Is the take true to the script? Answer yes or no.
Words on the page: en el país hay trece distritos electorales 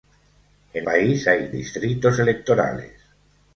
no